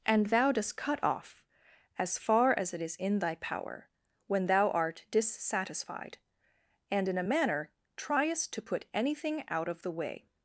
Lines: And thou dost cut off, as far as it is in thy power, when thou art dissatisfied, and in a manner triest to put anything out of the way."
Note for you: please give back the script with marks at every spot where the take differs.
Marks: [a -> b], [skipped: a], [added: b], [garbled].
And thou dost cut off, as far as it is in thy power, when thou art dissatisfied, and in a manner triest to put anything out of the way."